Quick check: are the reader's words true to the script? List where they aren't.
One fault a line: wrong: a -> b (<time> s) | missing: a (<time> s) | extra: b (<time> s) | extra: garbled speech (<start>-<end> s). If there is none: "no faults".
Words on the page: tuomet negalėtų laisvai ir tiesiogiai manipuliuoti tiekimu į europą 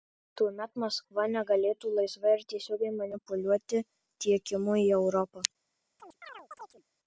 extra: maskva (0.8 s)